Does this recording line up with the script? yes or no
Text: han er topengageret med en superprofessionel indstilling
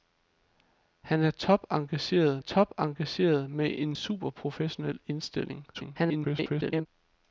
no